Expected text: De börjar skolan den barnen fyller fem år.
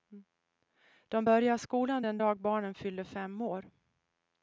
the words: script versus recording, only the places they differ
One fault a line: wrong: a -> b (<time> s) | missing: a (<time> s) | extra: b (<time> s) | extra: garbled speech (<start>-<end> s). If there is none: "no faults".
extra: dag (2.2 s)